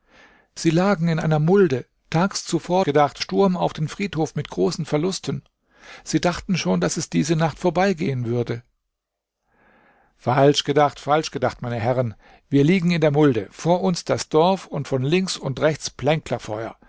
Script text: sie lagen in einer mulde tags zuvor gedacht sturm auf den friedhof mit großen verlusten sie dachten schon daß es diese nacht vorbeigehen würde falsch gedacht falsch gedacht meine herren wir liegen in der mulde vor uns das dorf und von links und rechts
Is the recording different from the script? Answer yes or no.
no